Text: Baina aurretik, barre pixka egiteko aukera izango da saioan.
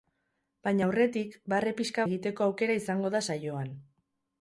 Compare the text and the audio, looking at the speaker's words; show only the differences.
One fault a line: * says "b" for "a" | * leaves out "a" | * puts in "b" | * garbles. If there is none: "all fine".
all fine